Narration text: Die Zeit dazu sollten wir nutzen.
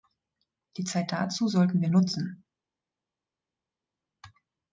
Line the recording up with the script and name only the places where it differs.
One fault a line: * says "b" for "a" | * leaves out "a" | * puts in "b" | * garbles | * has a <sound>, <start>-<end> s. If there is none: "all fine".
all fine